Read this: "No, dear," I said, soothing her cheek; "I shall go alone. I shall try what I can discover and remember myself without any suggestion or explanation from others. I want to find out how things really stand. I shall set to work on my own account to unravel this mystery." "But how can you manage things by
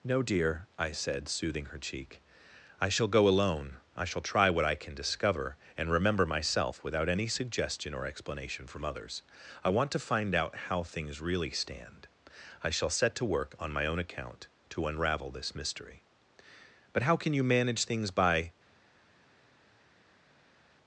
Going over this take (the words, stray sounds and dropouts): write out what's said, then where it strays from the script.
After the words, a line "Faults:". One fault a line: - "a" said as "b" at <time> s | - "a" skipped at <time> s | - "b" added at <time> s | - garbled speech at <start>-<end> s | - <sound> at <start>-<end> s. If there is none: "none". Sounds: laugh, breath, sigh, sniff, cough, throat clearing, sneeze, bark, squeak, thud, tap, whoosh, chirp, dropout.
"No, dear," I said, soothing her cheek; "I shall go alone. I shall try what I can discover and remember myself without any suggestion or explanation from others. I want to find out how things really stand. I shall set to work on my own account to unravel this mystery." "But how can you manage things by
Faults:
none